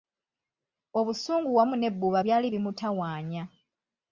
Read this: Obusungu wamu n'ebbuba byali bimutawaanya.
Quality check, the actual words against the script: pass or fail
pass